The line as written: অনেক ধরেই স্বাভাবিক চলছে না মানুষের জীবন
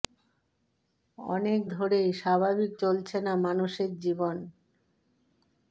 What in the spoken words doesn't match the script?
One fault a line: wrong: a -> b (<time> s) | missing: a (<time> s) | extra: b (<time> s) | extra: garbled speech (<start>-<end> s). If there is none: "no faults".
no faults